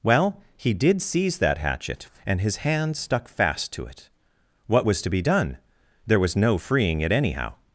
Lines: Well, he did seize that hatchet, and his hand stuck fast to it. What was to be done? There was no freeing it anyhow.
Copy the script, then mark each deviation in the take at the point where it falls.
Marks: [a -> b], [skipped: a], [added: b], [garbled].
Well, he did seize that hatchet, and his hand stuck fast to it. What was to be done? There was no freeing it anyhow.